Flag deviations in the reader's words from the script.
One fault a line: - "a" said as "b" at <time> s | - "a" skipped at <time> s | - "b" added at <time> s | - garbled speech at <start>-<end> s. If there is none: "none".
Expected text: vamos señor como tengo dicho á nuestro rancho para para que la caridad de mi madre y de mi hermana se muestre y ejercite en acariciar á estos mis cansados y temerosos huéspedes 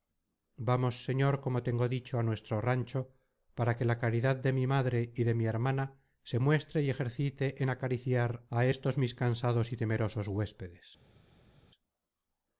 - "para" skipped at 3.8 s